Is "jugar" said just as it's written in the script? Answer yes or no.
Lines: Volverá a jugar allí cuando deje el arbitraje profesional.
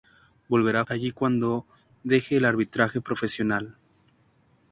no